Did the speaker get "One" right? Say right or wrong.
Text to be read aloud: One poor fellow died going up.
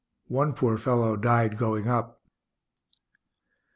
right